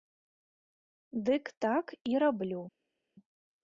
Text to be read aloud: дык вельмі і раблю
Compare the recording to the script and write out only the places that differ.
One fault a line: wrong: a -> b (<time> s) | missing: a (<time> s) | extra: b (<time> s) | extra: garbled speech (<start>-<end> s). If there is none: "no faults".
wrong: вельмі -> так (1.6 s)